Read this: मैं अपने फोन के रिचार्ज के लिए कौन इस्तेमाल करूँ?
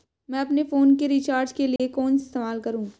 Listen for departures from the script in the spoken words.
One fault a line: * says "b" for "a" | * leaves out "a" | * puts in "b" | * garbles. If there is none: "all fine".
all fine